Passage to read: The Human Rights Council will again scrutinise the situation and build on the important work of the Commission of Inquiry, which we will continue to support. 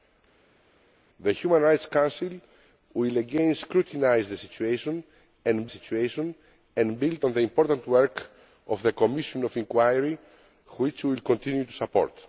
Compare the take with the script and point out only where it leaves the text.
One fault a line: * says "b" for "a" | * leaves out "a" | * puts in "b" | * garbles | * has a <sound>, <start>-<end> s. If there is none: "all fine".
* puts in "situation and"